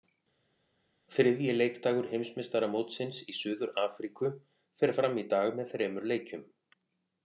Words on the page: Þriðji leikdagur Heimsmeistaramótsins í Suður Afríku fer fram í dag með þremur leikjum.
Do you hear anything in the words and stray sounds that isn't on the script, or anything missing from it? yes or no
no